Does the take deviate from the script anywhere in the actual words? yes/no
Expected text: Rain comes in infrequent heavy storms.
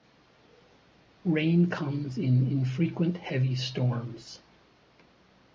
no